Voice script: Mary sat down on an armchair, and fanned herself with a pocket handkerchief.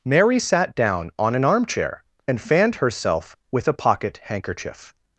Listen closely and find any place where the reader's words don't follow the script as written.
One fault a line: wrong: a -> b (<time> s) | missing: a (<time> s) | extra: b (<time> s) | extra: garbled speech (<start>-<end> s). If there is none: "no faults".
no faults